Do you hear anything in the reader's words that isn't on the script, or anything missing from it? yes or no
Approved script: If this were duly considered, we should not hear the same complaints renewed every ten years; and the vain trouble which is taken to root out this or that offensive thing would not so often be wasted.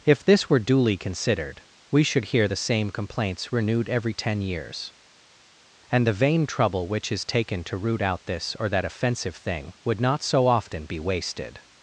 yes